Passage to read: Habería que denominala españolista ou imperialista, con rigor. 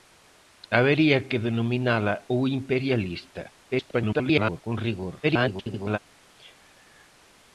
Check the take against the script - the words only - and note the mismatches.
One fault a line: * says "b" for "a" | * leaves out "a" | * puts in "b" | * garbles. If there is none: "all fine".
* leaves out "españolista"
* garbles
* garbles